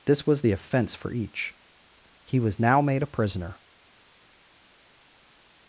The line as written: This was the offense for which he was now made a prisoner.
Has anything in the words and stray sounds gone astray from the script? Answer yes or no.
yes